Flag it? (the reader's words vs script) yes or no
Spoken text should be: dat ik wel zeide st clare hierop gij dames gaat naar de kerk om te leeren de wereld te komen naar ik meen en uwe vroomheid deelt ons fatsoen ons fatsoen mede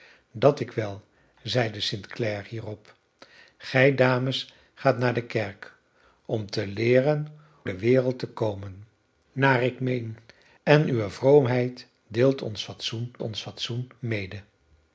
no